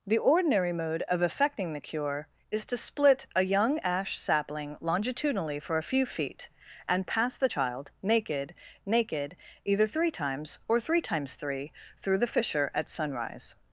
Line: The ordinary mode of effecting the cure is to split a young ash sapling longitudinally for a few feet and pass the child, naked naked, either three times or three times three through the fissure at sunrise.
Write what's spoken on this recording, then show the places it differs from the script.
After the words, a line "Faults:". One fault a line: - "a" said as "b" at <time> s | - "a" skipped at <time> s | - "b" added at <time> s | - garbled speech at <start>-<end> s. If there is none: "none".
The ordinary mode of effecting the cure is to split a young ash sapling longitudinally for a few feet and pass the child, naked naked, either three times or three times three through the fissure at sunrise.
Faults:
none